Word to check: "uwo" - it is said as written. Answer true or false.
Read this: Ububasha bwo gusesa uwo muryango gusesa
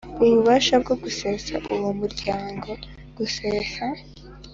true